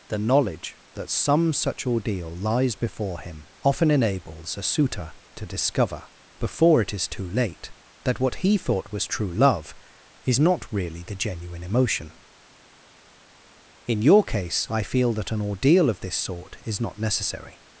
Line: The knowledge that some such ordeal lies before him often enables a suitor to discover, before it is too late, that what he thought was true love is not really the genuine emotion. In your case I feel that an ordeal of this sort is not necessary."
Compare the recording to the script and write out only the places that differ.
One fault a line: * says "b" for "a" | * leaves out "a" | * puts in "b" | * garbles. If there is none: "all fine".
all fine